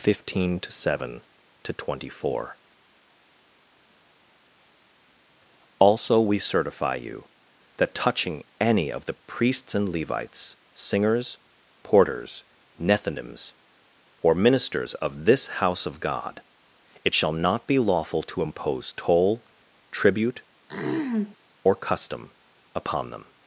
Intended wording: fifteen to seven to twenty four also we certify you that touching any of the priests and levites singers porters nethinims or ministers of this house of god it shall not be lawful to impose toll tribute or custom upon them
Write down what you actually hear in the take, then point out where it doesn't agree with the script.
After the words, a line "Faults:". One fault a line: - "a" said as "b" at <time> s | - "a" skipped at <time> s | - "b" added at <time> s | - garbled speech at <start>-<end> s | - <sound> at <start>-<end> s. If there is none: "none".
fifteen to seven to twenty four also we certify you that touching any of the priests and levites singers porters nethinims or ministers of this house of god it shall not be lawful to impose toll tribute or custom upon them
Faults:
- throat clearing at 20.7-21.4 s